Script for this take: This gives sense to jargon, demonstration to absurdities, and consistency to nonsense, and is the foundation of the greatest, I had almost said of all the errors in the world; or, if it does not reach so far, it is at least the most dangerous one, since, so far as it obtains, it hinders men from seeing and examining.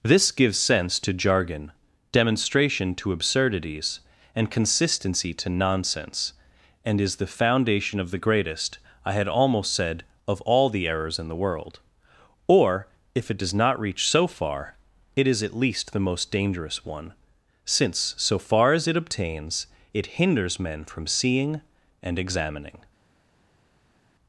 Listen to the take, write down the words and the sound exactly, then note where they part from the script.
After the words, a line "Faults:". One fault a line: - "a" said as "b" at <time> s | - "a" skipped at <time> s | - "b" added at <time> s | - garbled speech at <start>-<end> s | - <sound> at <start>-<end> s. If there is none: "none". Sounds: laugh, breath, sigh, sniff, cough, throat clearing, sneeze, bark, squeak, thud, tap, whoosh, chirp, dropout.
This gives sense to jargon, demonstration to absurdities, and consistency to nonsense, and is the foundation of the greatest, I had almost said of all the errors in the world; or, if it does not reach so far, it is at least the most dangerous one, since, so far as it obtains, it hinders men from seeing and examining.
Faults:
none